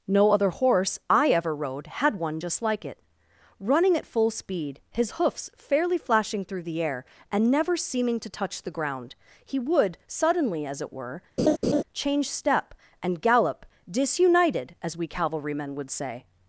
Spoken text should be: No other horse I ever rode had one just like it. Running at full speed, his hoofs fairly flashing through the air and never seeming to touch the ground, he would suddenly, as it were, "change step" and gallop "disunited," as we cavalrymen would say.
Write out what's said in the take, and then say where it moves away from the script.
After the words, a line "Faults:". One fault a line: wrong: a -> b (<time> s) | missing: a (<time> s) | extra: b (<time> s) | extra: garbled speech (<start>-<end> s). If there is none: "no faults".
No other horse I ever rode had one just like it. Running at full speed, his hoofs fairly flashing through the air and never seeming to touch the ground, he would suddenly, as it were, "change step" and gallop "disunited," as we cavalrymen would say.
Faults:
no faults